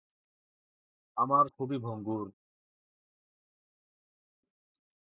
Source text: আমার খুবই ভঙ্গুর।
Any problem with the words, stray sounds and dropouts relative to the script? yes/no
no